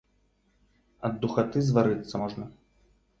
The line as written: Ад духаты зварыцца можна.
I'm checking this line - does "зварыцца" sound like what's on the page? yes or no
yes